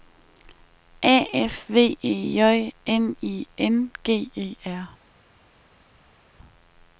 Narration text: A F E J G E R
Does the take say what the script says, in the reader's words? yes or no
no